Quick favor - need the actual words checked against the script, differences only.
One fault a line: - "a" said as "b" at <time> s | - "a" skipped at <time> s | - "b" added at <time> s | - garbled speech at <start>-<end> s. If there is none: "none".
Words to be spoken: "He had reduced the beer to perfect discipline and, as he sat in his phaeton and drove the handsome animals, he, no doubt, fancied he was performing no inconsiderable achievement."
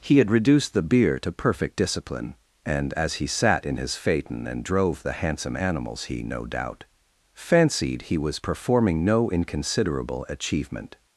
none